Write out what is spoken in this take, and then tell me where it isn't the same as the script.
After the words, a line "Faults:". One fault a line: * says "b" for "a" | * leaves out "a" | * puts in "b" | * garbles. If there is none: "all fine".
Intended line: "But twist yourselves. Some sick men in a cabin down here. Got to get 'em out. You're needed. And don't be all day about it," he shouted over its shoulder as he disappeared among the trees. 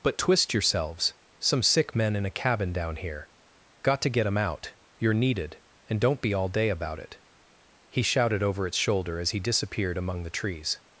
"But twist yourselves. Some sick men in a cabin down here. Got to get 'em out. You're needed. And don't be all day about it," he shouted over its shoulder as he disappeared among the trees.
Faults:
all fine